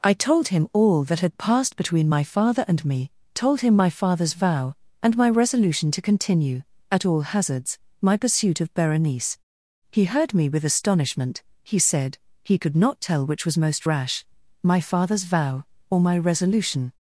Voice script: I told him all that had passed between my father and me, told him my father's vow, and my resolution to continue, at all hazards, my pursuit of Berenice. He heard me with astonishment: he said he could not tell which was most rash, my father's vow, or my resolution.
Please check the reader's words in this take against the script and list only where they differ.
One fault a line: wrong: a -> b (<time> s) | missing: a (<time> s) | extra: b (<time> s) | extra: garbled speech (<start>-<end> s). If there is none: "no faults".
no faults